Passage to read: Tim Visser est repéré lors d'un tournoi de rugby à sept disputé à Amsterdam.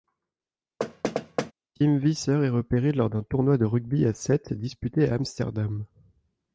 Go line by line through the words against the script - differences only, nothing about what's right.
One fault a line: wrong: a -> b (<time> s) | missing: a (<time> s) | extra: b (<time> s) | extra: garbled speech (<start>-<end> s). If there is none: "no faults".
no faults